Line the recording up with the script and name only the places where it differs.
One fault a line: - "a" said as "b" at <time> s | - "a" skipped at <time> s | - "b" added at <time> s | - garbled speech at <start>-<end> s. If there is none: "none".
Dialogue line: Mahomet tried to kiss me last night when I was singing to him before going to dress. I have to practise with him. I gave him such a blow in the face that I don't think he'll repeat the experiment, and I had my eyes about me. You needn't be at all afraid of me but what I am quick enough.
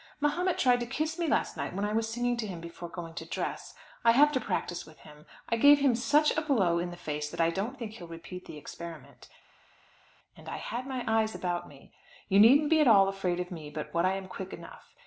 none